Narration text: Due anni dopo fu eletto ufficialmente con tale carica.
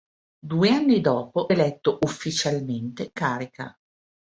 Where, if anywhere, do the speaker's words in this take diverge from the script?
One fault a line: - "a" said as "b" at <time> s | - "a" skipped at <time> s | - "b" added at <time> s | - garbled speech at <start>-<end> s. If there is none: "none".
- "fu" skipped at 1.5 s
- "con tale" skipped at 3.1 s